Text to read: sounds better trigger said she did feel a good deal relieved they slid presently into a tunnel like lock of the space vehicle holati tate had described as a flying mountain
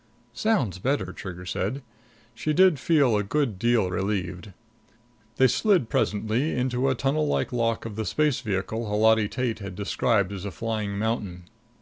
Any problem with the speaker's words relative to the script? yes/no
no